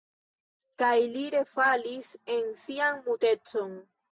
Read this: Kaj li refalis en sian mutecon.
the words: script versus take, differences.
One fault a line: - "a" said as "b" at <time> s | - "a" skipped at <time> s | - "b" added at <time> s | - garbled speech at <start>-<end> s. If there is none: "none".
none